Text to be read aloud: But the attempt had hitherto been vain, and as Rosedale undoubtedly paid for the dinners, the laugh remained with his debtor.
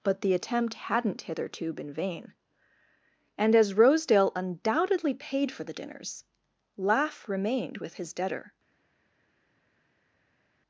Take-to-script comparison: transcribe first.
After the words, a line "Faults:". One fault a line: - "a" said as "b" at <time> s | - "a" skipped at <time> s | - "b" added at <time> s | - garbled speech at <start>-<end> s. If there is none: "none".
But the attempt hadn't hitherto been vain, and as Rosedale undoubtedly paid for the dinners, laugh remained with his debtor.
Faults:
- "had" said as "hadn't" at 0.8 s
- "the" skipped at 6.2 s